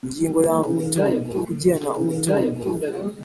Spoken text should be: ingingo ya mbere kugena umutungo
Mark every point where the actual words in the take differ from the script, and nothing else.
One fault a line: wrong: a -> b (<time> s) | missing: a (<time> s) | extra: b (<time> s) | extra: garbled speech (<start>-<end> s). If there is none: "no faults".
wrong: mbere -> umutungo (0.7 s)